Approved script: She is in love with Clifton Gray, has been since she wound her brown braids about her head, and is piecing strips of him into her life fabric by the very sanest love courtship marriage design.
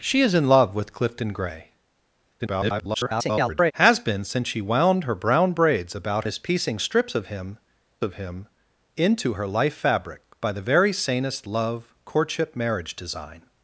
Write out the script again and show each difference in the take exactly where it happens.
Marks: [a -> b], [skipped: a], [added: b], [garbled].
She is in love with Clifton Gray, [garbled] has been since she wound her brown braids about [skipped: her head, and] is piecing strips of him [added: of him] into her life fabric by the very sanest love courtship marriage design.